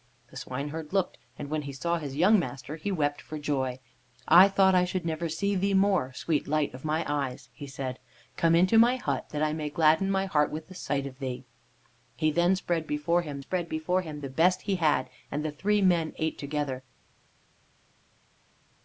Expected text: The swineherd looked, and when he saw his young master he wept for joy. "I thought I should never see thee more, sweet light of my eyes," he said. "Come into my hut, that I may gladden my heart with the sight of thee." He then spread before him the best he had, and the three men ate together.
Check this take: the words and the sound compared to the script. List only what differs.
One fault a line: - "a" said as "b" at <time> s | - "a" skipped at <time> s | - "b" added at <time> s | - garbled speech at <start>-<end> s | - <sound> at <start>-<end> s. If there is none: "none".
- "spread before him" added at 13.4 s